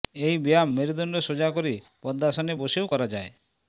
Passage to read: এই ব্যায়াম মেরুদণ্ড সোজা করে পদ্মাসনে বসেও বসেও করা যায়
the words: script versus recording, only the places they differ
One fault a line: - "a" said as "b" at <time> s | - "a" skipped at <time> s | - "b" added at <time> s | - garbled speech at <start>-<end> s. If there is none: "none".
- "বসেও" skipped at 2.9 s